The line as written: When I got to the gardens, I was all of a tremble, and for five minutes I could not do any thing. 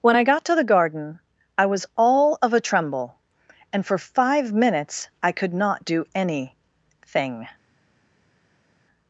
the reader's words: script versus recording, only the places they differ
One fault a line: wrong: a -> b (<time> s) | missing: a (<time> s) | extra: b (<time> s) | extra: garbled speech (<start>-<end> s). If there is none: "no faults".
wrong: gardens -> garden (0.6 s)